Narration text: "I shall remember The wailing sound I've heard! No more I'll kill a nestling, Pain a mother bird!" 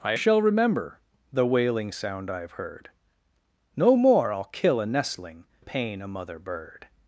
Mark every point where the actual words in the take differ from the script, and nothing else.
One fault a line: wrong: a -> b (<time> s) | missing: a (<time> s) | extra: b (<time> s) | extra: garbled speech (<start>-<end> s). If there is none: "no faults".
no faults